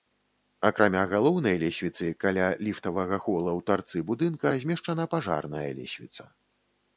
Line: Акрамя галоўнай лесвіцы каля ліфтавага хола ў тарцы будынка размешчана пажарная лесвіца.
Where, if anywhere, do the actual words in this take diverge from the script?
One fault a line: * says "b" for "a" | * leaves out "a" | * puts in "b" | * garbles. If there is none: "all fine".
all fine